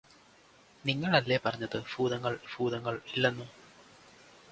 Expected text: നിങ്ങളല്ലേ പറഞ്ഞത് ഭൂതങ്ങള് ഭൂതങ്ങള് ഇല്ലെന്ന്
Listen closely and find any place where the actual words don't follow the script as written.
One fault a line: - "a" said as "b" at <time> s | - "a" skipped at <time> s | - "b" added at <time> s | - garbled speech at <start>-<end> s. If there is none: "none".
none